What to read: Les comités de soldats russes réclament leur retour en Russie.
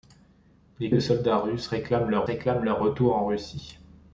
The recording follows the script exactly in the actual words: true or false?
false